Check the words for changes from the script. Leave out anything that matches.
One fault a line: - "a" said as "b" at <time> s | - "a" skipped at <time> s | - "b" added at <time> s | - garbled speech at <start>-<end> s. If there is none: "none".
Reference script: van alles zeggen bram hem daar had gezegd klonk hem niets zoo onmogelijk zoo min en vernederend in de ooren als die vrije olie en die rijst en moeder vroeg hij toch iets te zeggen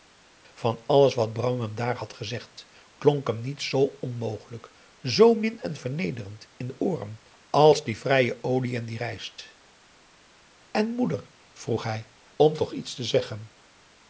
- "zeggen" said as "wat" at 1.1 s
- "om" added at 12.4 s